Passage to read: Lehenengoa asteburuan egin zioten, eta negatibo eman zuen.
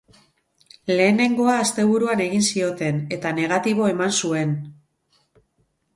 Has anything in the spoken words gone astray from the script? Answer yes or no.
no